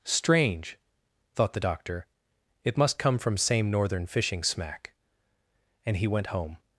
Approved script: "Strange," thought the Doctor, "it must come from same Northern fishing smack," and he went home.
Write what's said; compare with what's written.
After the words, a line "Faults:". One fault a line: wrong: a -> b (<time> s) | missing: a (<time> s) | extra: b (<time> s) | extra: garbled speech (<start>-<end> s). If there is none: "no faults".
"Strange," thought the Doctor, "it must come from same Northern fishing smack," and he went home.
Faults:
no faults